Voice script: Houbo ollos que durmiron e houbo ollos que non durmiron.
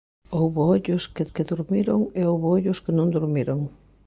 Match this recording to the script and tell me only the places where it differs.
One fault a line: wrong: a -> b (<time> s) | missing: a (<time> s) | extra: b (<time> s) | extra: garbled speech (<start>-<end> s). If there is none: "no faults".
extra: que (1.3 s)